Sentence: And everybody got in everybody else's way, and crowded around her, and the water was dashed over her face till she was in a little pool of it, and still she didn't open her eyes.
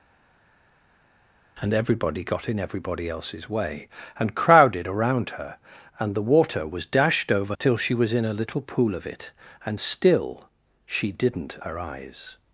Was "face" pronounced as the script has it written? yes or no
no